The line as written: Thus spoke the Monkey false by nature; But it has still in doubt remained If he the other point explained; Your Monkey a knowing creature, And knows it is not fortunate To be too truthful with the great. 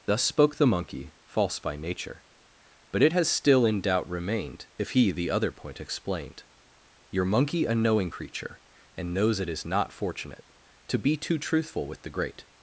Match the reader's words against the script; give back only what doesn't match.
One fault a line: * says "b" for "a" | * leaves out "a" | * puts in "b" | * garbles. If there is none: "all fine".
all fine